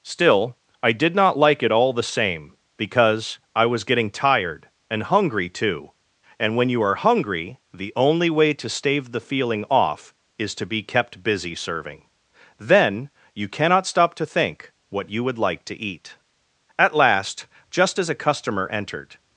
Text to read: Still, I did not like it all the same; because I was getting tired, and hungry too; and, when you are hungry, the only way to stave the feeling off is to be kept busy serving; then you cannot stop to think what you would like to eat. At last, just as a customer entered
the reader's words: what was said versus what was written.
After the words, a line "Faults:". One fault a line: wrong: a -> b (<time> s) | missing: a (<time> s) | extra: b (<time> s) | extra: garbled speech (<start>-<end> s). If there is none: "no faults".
Still, I did not like it all the same; because I was getting tired, and hungry too; and, when you are hungry, the only way to stave the feeling off is to be kept busy serving; then you cannot stop to think what you would like to eat. At last, just as a customer entered
Faults:
no faults